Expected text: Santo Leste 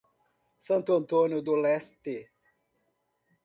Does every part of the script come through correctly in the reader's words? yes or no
no